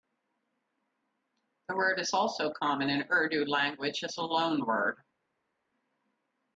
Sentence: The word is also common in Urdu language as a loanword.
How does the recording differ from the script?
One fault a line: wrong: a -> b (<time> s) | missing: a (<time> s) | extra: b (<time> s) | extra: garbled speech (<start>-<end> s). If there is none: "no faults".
no faults